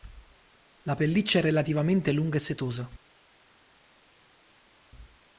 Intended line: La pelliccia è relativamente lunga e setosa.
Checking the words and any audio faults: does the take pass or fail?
pass